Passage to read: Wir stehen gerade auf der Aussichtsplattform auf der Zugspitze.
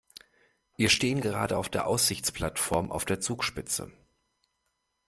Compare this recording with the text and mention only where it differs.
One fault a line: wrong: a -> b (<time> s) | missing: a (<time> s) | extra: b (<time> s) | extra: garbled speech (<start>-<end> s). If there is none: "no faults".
no faults